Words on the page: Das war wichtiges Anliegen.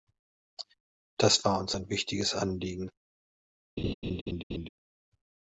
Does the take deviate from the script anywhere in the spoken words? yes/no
yes